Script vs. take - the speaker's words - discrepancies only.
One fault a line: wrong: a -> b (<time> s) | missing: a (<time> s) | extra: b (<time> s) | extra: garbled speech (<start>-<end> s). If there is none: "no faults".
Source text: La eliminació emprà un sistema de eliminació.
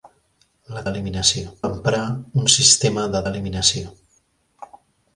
no faults